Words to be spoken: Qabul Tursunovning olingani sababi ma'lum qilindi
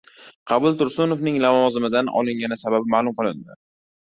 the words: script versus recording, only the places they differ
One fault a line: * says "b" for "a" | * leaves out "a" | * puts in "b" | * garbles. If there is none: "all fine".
* puts in "lavozimidan"